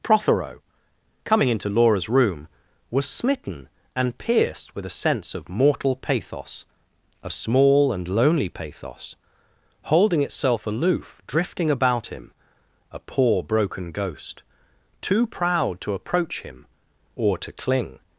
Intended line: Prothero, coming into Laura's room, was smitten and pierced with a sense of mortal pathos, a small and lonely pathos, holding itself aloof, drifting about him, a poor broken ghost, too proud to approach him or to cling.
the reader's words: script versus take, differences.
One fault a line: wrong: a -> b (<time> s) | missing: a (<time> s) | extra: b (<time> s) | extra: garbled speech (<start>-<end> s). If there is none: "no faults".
no faults